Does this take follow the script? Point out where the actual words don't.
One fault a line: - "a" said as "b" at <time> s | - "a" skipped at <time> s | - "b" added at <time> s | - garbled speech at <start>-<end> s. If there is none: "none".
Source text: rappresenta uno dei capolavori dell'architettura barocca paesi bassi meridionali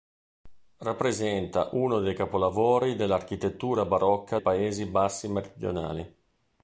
none